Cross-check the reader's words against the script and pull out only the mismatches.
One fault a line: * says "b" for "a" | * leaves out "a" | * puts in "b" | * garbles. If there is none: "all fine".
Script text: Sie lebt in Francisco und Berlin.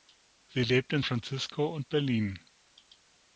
all fine